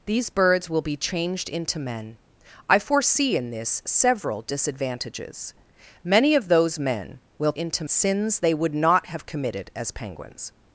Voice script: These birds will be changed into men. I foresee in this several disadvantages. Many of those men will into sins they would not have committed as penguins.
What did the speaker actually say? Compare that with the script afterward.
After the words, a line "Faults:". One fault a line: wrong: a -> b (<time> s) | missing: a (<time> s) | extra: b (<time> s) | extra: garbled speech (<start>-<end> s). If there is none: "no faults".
These birds will be changed into men. I foresee in this several disadvantages. Many of those men will into sins they would not have committed as penguins.
Faults:
no faults